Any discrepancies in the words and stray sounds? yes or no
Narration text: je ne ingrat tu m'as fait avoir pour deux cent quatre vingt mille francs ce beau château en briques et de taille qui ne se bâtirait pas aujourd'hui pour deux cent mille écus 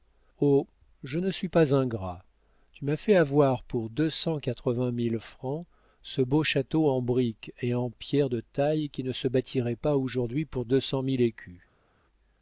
yes